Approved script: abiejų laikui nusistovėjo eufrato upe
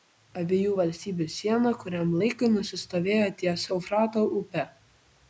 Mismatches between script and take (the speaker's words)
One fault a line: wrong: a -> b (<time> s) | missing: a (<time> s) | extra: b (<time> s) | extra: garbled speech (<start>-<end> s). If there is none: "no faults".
extra: valstybių siena kuriam (0.8 s)
extra: ties (3.4 s)